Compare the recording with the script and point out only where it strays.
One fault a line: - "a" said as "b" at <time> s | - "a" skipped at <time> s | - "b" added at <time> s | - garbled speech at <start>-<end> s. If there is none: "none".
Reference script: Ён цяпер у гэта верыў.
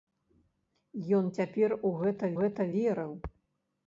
- "гэта" added at 2.4 s